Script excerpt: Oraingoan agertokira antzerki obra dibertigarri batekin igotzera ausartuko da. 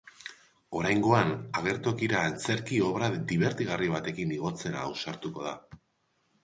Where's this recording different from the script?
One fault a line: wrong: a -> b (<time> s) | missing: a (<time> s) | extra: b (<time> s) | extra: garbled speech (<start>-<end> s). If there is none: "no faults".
no faults